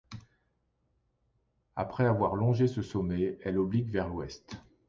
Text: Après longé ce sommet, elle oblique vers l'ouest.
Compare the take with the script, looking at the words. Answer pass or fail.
fail